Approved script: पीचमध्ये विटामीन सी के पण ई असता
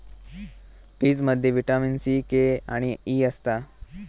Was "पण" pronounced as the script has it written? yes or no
no